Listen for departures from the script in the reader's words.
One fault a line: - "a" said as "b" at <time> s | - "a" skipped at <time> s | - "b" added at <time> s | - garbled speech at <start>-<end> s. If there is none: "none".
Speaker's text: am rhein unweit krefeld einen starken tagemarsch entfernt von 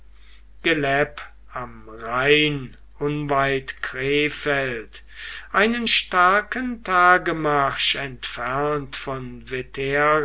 none